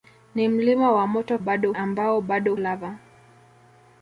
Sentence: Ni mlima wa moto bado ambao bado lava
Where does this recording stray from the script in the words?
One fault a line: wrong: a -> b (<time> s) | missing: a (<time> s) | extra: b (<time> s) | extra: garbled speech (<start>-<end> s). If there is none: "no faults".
no faults